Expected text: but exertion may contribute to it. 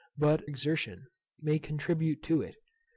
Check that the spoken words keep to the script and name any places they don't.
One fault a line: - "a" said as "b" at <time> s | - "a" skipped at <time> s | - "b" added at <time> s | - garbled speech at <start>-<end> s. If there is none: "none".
none